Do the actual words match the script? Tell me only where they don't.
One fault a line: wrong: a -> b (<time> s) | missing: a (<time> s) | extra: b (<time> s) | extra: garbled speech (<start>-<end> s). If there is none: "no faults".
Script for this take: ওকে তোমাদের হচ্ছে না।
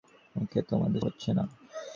no faults